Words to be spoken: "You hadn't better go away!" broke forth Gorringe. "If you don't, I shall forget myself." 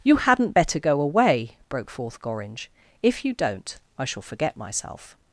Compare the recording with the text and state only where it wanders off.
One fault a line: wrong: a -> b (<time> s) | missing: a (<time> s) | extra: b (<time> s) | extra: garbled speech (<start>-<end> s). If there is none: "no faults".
no faults